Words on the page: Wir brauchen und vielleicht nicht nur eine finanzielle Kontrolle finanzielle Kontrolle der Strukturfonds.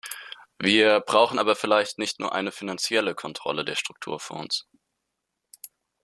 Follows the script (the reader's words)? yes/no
no